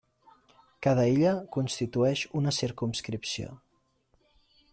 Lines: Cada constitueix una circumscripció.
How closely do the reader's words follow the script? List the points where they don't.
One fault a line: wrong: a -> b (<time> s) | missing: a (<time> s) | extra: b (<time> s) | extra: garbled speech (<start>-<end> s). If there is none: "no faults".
extra: illa (1.1 s)